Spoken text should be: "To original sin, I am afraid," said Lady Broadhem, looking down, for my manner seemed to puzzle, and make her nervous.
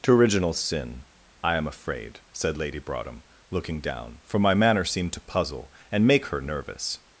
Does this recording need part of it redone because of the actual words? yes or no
no